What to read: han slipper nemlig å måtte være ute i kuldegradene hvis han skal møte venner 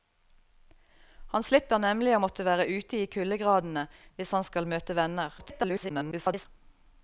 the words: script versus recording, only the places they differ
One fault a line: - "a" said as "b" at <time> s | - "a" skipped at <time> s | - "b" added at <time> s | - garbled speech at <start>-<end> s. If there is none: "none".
- garbled speech at 5.4-6.5 s